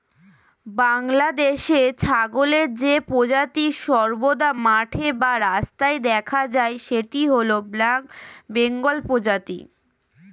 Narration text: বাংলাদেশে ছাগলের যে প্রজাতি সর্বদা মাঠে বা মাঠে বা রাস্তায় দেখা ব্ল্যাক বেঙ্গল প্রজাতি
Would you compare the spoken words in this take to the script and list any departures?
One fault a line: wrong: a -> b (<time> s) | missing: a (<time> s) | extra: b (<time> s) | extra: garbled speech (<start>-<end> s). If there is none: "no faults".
wrong: মাঠে বা রাস্তায় দেখা -> রাস্তায় দেখা যায় সেটি হল (5.5 s)